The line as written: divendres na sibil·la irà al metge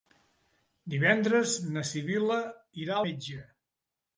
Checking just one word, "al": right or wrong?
wrong